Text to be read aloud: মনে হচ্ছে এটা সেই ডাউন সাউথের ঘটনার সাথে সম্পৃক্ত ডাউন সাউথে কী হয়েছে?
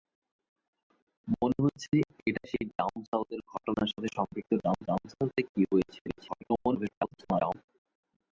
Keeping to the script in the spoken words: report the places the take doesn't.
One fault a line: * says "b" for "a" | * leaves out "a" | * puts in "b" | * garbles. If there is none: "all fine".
* puts in "ডাউন"
* garbles